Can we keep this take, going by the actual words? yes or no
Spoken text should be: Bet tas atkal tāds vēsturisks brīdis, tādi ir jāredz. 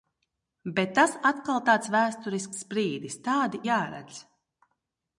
no